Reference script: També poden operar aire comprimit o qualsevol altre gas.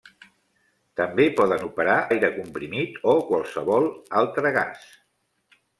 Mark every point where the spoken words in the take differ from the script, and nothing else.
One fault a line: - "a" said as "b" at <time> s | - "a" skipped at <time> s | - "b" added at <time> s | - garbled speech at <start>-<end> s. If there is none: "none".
none